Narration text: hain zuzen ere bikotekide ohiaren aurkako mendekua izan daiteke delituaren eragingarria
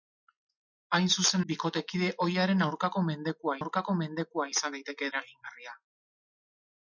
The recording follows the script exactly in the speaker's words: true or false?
false